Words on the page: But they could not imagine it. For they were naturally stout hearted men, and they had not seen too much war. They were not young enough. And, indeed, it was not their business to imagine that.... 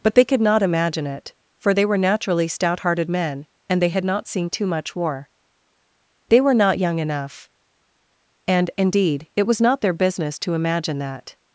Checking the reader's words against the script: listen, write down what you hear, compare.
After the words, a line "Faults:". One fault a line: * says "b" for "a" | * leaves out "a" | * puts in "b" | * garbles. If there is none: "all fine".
But they could not imagine it. For they were naturally stout hearted men, and they had not seen too much war. They were not young enough. And, indeed, it was not their business to imagine that....
Faults:
all fine